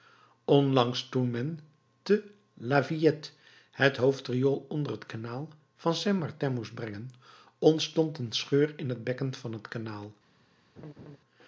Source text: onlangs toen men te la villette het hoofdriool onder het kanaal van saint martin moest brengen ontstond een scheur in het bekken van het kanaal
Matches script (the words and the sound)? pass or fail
fail